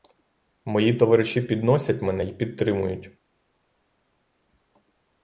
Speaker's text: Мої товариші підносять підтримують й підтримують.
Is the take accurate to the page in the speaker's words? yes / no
no